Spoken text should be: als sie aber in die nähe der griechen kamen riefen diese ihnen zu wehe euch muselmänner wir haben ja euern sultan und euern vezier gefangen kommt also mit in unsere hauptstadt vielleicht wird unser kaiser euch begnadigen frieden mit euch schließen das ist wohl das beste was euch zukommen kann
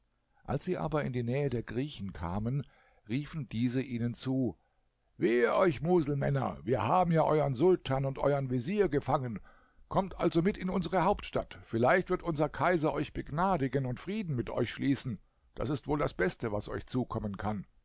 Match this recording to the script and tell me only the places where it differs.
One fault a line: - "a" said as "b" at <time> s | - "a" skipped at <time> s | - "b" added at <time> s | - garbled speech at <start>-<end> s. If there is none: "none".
- "und" added at 13.8 s